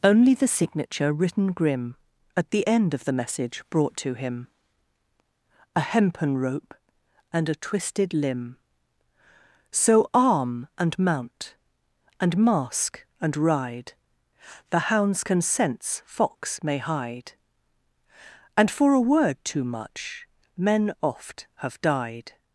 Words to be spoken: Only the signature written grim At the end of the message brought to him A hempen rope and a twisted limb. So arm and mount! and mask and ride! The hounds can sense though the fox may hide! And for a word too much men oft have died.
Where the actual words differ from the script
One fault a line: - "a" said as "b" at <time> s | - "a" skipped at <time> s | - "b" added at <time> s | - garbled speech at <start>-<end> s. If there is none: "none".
- "though the" skipped at 16.0 s